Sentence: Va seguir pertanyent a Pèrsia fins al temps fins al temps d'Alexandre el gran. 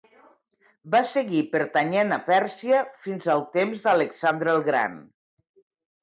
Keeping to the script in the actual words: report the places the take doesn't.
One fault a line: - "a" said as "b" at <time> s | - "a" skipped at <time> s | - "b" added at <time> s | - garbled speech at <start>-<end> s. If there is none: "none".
- "fins al temps" skipped at 3.8 s